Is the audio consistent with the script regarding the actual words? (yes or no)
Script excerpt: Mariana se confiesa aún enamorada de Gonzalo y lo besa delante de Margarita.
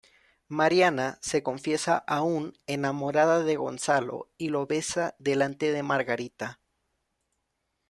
yes